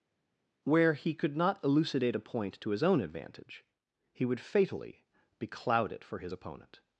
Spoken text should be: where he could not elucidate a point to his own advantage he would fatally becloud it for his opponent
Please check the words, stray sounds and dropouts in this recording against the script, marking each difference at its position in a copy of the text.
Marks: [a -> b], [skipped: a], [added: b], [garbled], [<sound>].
where he could not elucidate a point to his own advantage he would fatally becloud it for his opponent